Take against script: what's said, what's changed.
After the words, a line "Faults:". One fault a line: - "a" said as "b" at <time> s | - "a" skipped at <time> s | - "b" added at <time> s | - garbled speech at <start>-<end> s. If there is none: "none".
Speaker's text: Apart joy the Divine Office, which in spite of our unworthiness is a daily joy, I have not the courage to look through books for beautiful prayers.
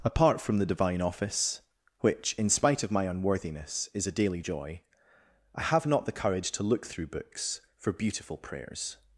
Apart from the Divine Office, which in spite of my unworthiness is a daily joy, I have not the courage to look through books for beautiful prayers.
Faults:
- "joy" said as "from" at 0.4 s
- "our" said as "my" at 2.9 s